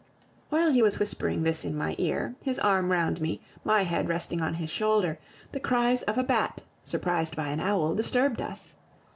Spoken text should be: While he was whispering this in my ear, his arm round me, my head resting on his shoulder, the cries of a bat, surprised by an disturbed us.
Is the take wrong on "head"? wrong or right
right